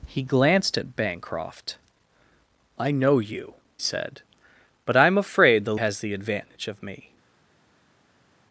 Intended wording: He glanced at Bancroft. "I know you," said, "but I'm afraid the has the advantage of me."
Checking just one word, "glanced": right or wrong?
right